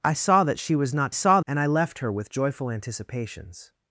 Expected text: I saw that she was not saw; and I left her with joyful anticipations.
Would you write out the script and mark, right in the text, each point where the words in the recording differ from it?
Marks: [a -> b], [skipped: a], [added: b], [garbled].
I saw that she was not saw; and I left her with joyful anticipations.